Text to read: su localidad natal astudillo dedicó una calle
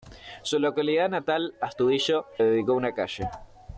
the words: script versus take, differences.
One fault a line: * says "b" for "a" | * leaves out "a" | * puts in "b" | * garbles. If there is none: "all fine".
all fine